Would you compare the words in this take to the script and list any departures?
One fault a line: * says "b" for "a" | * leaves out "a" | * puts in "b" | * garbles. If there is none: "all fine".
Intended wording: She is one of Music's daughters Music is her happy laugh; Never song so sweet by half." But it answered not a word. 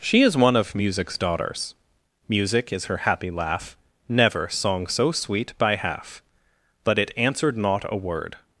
all fine